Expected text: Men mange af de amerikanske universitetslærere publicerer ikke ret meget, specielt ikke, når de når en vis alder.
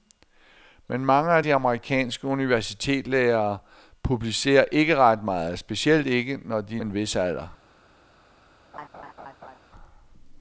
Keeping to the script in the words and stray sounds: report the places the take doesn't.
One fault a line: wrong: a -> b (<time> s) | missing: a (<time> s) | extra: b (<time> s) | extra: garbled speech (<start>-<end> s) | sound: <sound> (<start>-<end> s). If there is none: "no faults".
missing: når (6.8 s)
sound: laugh (8.7-9.6 s)